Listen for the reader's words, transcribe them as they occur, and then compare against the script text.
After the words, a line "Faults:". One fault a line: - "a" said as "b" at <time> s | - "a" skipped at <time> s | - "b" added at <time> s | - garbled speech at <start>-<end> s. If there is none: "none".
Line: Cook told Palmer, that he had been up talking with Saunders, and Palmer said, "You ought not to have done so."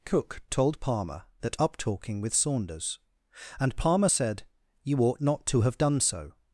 Cook told Palmer, that up talking with Saunders, and Palmer said, "You ought not to have done so."
Faults:
- "he had been" skipped at 1.6 s